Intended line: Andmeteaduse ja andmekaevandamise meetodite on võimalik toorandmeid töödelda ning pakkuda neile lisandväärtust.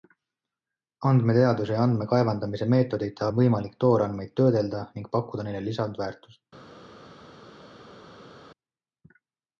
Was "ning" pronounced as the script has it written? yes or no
yes